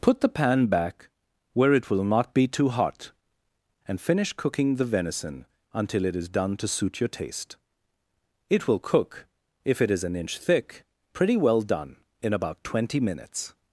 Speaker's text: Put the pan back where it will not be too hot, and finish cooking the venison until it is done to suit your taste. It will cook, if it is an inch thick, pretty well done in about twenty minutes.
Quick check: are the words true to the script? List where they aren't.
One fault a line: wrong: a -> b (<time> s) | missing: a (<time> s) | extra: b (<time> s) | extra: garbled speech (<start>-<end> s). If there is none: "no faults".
no faults